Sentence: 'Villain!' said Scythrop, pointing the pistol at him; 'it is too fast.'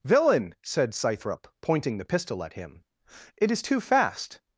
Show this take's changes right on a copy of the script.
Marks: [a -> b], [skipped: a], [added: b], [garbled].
'Villain!' said Scythrop, pointing the pistol at him; 'it is too fast.'